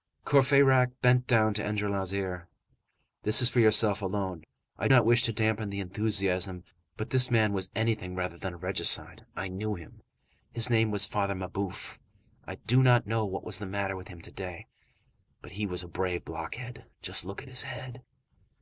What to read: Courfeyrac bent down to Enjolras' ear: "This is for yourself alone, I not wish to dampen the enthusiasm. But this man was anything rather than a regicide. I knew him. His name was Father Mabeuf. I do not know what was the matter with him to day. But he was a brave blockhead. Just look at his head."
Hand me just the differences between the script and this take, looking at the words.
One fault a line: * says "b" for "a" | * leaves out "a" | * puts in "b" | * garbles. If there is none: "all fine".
all fine